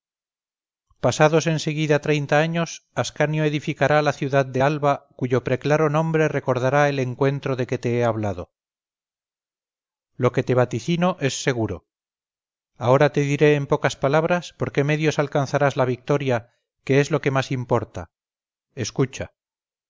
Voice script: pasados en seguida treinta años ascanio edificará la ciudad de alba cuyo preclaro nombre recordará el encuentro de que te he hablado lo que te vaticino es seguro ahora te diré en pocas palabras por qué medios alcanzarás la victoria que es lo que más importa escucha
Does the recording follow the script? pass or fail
pass